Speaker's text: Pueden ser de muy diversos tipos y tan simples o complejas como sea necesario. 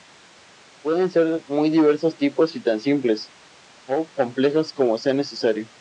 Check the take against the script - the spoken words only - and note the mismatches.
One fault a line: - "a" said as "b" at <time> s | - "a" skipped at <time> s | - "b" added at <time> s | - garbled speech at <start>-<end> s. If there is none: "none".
none